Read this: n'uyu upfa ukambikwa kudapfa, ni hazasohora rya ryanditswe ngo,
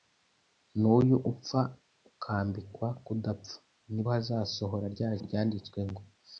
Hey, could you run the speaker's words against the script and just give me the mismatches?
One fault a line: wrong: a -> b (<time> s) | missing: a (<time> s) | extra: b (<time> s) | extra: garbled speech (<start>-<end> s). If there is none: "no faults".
no faults